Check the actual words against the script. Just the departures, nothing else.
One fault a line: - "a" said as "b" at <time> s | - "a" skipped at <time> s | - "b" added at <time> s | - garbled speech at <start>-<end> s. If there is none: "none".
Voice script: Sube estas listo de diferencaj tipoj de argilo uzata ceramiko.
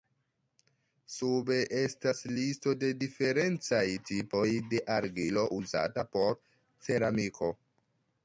- "por" added at 6.1 s